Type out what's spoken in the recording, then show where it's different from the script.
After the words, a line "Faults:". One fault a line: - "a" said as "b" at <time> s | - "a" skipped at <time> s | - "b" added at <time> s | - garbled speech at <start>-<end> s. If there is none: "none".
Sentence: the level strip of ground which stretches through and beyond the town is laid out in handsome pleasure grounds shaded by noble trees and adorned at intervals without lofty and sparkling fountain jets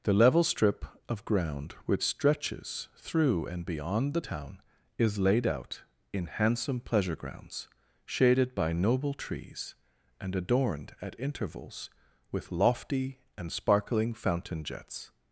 the level strip of ground which stretches through and beyond the town is laid out in handsome pleasure grounds shaded by noble trees and adorned at intervals with lofty and sparkling fountain jets
Faults:
- "without" said as "with" at 12.3 s